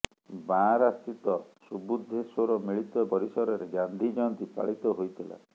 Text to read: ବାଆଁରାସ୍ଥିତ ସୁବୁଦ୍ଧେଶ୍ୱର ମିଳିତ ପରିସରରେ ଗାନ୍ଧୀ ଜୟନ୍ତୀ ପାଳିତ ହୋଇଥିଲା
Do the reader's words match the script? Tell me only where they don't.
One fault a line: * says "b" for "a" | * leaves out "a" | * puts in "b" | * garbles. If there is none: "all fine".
all fine